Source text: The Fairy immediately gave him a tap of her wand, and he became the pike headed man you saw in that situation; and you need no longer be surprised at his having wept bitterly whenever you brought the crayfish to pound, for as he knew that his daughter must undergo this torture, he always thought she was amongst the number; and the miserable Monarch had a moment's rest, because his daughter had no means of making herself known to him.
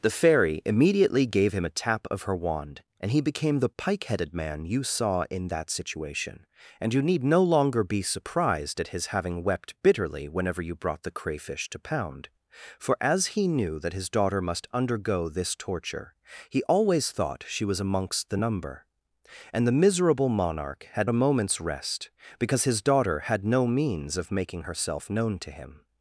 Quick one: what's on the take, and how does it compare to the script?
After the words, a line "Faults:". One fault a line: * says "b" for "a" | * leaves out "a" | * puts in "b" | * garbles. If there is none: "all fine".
The Fairy immediately gave him a tap of her wand, and he became the pike headed man you saw in that situation; and you need no longer be surprised at his having wept bitterly whenever you brought the crayfish to pound, for as he knew that his daughter must undergo this torture, he always thought she was amongst the number; and the miserable Monarch had a moment's rest, because his daughter had no means of making herself known to him.
Faults:
all fine